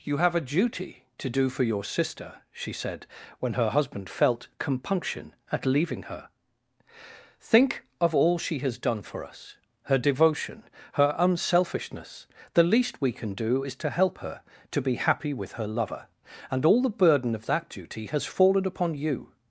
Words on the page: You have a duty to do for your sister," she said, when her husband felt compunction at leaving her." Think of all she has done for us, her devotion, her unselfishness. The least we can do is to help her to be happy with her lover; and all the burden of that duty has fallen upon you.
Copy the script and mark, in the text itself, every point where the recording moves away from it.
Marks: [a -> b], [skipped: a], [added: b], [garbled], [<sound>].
You have a duty to do for your sister," she said, when her husband felt compunction at leaving her." Think of all she has done for us, her devotion, her unselfishness. The least we can do is to help her to be happy with her lover; and all the burden of that duty has fallen upon you.